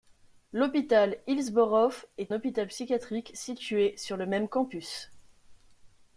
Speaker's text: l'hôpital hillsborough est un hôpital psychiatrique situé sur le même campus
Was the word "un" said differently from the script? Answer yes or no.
yes